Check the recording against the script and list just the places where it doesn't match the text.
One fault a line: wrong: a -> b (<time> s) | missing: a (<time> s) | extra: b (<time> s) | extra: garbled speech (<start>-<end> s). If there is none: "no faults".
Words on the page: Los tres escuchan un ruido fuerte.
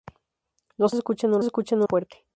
missing: tres (0.9 s)
wrong: ruido -> escuchan (1.4 s)